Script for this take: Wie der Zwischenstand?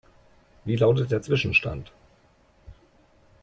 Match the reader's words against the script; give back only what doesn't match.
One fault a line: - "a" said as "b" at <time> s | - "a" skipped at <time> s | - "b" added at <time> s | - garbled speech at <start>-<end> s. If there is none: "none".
- "lautet" added at 0.8 s